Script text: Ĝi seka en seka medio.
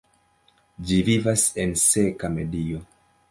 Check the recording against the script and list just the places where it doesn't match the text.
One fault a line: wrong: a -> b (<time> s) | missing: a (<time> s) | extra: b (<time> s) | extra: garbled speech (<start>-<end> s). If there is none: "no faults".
wrong: seka -> vivas (1.1 s)